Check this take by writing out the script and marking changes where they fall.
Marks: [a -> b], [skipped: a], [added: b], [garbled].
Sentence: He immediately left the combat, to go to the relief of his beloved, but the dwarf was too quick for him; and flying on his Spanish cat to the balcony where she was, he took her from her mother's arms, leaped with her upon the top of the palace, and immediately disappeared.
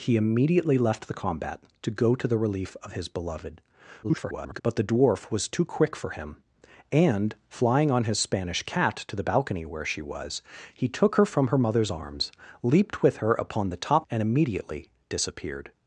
He immediately left the combat, to go to the relief of his beloved, [garbled] but the dwarf was too quick for him; and flying on his Spanish cat to the balcony where she was, he took her from her mother's arms, leaped with her upon the top [skipped: of the palace,] and immediately disappeared.